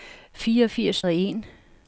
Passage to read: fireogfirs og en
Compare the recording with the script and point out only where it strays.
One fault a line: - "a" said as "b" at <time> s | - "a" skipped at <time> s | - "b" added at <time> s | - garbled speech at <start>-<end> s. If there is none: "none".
none